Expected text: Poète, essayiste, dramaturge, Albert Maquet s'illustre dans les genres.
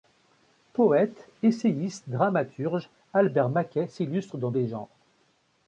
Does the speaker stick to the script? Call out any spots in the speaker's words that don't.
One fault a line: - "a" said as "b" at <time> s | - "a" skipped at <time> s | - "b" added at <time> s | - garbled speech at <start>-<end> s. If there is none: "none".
none